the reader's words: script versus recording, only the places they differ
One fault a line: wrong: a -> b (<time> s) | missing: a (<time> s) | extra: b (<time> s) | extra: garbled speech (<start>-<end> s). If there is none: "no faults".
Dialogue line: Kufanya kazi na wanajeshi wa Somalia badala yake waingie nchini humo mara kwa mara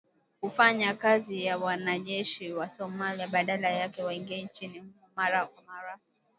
no faults